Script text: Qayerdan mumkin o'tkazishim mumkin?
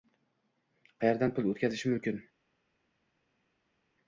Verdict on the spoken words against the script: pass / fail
fail